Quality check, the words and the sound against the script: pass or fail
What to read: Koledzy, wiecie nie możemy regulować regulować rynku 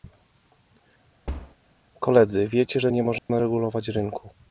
fail